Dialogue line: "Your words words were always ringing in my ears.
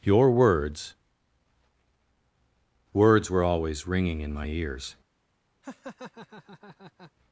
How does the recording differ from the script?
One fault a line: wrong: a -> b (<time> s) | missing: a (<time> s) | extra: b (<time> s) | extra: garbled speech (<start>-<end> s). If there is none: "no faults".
no faults